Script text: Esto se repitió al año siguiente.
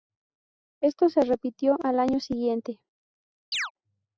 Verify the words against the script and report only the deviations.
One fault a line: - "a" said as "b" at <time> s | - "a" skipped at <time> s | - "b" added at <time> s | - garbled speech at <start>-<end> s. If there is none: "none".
none